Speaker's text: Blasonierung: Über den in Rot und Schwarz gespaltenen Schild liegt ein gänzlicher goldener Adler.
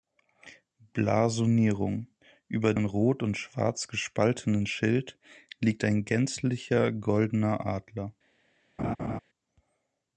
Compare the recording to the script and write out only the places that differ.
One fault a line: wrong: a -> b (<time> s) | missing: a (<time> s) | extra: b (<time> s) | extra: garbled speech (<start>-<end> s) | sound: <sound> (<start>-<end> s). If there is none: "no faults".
missing: den (2.7 s)
sound: laugh (8.8-9.2 s)